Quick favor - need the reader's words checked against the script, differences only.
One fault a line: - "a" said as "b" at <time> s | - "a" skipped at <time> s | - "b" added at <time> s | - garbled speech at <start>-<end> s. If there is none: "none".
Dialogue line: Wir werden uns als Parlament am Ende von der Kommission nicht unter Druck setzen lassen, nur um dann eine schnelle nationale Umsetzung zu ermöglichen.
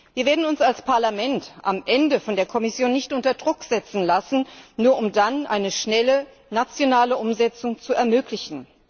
none